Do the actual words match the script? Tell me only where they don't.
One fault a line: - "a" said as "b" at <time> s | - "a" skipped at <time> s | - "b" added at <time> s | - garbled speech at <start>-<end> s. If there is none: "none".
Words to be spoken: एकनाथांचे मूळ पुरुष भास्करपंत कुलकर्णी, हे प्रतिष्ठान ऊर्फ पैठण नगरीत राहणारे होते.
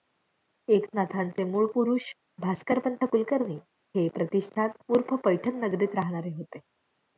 none